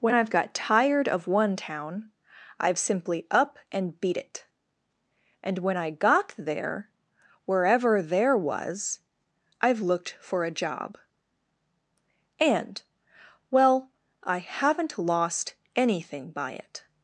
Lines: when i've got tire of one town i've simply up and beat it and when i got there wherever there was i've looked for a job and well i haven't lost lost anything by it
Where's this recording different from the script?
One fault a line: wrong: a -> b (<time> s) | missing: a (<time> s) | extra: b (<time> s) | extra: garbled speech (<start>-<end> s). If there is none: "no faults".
wrong: tire -> tired (0.5 s)
missing: lost (15.5 s)